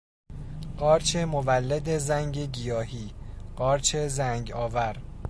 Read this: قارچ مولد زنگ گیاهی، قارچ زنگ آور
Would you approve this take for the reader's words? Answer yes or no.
yes